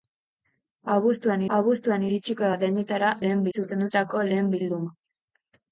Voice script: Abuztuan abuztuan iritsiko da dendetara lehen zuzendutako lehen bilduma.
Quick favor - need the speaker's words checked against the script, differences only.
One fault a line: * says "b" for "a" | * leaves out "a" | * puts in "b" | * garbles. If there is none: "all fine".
all fine